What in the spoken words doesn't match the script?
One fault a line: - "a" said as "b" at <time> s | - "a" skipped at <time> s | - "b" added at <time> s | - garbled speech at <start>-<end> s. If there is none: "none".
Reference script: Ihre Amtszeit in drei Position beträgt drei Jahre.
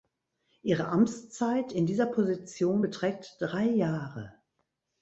- "drei" said as "dieser" at 1.9 s